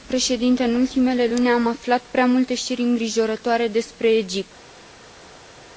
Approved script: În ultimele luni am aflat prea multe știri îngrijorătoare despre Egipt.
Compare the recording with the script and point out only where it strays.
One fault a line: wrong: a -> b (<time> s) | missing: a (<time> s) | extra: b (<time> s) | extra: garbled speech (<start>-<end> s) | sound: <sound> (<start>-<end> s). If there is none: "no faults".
no faults